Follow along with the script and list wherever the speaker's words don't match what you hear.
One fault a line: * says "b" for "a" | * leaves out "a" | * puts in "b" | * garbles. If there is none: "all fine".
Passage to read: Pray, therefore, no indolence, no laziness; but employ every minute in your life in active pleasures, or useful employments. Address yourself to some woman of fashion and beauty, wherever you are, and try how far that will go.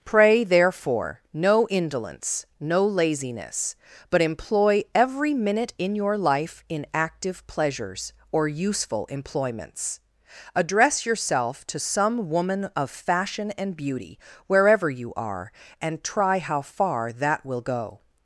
all fine